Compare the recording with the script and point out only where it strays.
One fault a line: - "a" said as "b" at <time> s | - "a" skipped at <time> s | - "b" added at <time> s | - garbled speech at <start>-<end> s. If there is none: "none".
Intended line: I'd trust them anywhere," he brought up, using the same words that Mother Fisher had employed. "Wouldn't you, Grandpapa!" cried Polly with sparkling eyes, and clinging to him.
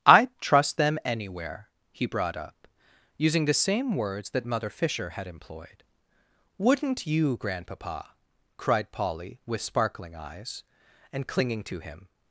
none